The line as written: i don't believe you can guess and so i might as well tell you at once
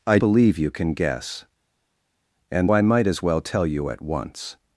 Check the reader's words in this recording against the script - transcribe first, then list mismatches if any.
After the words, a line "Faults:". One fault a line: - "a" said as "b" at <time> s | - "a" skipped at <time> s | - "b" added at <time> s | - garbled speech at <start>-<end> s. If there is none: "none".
i believe you can guess and i might as well tell you at once
Faults:
- "don't" skipped at 0.2 s
- "so" skipped at 2.7 s